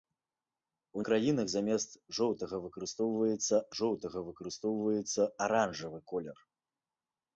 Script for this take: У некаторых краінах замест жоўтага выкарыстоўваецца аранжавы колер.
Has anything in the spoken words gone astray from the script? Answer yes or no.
yes